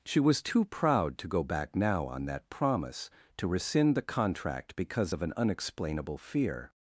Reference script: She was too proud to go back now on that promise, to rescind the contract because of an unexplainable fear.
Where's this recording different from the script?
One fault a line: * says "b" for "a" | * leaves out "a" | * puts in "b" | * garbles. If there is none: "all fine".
all fine